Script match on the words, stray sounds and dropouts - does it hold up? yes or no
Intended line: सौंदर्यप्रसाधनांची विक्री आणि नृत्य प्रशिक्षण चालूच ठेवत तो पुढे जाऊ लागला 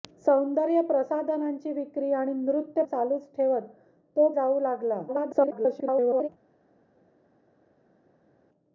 no